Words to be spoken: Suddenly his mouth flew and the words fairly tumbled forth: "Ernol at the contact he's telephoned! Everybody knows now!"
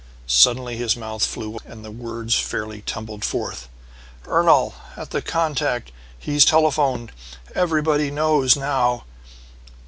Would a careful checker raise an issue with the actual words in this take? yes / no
no